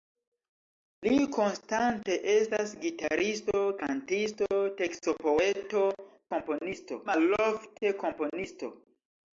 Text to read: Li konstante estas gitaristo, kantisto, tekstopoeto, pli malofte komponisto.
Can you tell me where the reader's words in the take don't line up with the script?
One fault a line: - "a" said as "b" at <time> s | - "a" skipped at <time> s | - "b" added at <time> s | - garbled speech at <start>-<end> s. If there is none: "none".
- "pli" said as "komponisto" at 6.3 s